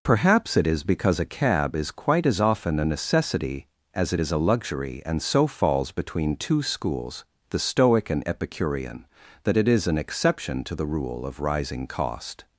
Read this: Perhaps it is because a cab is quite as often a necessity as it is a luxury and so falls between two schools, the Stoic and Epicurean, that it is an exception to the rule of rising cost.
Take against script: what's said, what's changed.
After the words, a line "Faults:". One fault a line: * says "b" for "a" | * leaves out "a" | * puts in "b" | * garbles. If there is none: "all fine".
Perhaps it is because a cab is quite as often a necessity as it is a luxury and so falls between two schools, the Stoic and Epicurean, that it is an exception to the rule of rising cost.
Faults:
all fine